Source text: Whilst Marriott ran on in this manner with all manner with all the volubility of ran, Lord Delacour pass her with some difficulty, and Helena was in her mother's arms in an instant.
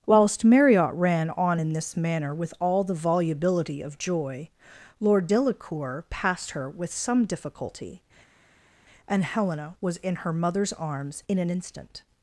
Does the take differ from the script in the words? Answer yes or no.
yes